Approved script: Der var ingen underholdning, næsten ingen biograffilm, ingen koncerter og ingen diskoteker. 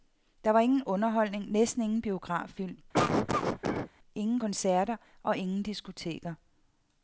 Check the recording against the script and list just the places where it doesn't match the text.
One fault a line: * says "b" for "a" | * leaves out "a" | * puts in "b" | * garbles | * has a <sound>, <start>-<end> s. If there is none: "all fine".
* has a cough, 2.9-3.9 s